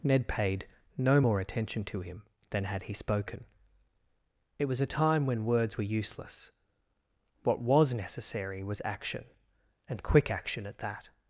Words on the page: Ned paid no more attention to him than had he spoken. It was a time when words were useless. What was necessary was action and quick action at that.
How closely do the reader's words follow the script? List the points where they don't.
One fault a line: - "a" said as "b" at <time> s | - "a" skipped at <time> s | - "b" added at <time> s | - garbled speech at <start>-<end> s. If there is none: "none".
none